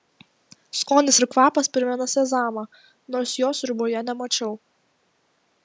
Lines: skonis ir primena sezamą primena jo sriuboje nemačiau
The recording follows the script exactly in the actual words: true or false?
false